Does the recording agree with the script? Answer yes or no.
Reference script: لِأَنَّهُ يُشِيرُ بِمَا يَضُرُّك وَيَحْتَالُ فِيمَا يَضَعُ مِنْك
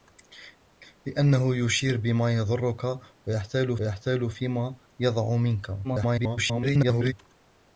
no